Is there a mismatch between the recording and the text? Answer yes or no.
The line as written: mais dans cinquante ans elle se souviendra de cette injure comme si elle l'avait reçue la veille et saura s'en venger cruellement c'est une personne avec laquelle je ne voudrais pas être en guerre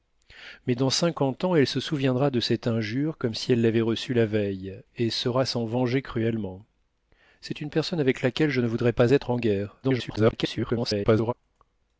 yes